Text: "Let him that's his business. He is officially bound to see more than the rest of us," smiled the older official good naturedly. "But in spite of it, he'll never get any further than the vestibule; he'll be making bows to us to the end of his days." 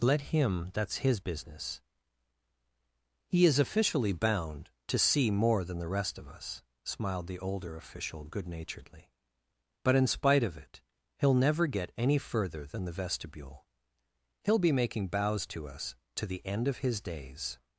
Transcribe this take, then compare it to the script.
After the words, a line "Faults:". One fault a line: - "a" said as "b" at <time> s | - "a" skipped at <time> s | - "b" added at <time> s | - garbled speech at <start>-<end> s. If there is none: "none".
"Let him that's his business. He is officially bound to see more than the rest of us," smiled the older official good naturedly. "But in spite of it, he'll never get any further than the vestibule; he'll be making bows to us to the end of his days."
Faults:
none